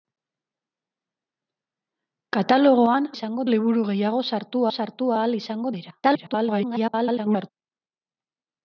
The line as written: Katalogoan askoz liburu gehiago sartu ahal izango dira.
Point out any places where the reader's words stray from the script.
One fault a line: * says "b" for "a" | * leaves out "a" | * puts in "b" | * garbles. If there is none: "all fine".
* says "izango" for "askoz"
* puts in "sartu"
* garbles